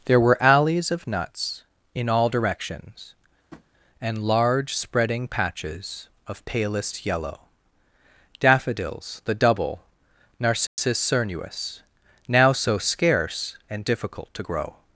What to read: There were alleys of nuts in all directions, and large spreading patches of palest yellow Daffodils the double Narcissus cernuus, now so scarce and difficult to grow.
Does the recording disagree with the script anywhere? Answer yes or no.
no